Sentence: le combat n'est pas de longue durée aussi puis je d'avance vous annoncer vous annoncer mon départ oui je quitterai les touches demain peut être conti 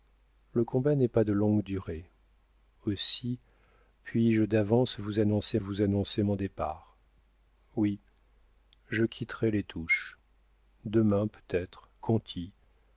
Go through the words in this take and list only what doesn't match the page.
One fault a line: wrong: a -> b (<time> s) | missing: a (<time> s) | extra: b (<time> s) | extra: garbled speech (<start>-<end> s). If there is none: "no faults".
no faults